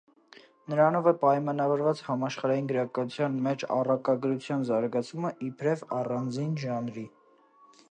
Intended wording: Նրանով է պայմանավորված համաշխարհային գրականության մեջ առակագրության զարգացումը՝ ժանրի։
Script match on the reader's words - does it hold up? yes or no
no